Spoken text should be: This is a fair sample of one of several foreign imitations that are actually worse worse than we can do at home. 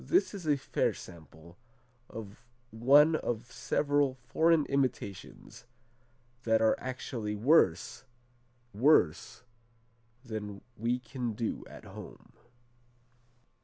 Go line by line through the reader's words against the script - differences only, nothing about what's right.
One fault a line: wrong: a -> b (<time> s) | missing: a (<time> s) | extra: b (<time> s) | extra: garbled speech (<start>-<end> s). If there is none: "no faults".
no faults